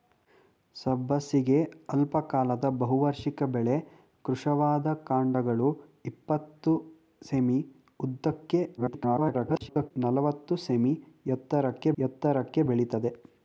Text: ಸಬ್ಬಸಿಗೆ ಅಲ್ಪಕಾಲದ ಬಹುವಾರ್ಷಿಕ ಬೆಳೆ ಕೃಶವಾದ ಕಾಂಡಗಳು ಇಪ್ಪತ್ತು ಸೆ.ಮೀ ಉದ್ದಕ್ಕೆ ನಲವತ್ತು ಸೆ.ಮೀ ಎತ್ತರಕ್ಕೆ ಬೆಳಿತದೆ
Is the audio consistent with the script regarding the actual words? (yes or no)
no